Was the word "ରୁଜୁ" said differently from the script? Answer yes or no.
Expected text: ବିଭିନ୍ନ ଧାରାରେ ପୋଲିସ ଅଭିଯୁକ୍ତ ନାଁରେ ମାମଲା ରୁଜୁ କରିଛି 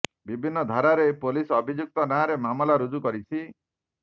no